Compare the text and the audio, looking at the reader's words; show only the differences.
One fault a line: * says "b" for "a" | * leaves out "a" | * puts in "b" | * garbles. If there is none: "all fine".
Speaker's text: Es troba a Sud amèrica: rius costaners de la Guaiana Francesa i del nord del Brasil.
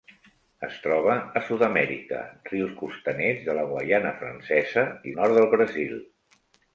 * leaves out "del"